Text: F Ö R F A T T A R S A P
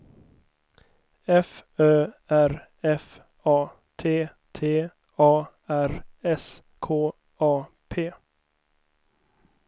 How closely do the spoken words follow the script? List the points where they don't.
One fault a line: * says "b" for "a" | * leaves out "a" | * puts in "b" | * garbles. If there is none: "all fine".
* puts in "K"